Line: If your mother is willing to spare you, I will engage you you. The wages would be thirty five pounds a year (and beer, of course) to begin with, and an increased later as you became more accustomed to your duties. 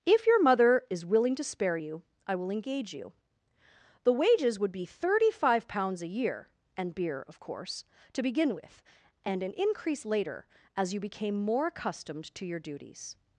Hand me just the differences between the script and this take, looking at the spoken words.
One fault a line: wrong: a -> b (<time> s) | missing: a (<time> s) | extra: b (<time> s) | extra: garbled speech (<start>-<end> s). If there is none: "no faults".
missing: you (3.1 s)
wrong: increased -> increase (9.6 s)